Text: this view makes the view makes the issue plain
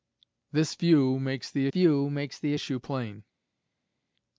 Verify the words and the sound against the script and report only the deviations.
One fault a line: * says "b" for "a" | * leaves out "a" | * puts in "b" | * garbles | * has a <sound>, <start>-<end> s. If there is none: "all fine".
all fine